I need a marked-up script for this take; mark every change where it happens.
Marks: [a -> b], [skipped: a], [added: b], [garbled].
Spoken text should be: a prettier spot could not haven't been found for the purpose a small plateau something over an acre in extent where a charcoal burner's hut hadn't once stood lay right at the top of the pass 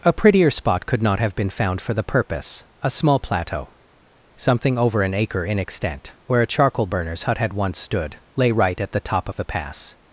a prettier spot could not [haven't -> have] been found for the purpose a small plateau something over an acre in extent where a charcoal burner's hut [hadn't -> had] once stood lay right at the top of the pass